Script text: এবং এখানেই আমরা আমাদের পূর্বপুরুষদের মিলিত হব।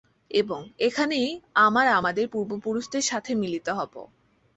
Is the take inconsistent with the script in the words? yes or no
yes